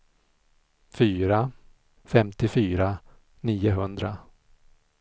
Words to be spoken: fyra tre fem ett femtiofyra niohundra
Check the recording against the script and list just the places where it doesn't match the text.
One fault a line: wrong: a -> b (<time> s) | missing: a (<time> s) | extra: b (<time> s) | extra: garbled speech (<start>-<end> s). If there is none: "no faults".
missing: tre fem ett (1.5 s)